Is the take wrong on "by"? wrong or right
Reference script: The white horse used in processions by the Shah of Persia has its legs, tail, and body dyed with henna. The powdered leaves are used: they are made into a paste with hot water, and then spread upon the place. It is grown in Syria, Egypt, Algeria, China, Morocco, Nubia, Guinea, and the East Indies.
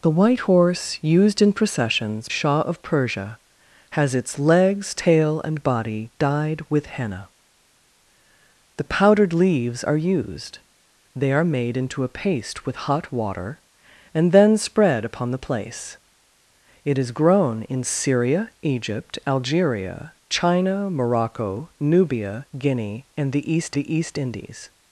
wrong